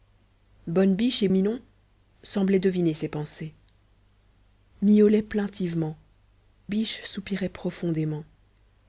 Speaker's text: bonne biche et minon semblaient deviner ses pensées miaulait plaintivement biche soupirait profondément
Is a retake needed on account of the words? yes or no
no